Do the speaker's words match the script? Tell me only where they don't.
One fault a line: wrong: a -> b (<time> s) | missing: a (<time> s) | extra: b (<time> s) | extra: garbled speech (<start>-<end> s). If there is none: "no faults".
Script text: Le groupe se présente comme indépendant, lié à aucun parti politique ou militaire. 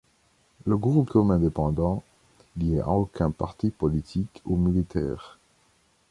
missing: se présente (1.1 s)